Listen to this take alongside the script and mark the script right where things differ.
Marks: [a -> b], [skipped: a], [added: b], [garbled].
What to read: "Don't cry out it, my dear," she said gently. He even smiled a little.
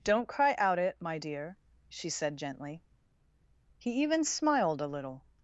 "Don't cry out it, my dear," she said gently. He even smiled a little.